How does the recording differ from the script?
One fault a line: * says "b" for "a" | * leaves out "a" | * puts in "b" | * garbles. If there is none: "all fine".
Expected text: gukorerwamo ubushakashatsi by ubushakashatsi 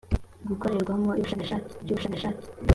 all fine